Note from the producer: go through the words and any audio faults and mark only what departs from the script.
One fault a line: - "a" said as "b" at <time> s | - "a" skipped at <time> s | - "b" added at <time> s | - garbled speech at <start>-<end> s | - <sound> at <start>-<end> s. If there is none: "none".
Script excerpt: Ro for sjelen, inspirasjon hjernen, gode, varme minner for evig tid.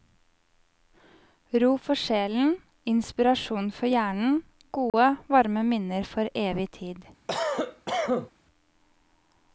- "for" added at 3.8 s
- dropout at 4.9-4.9 s
- cough at 7.3-8.3 s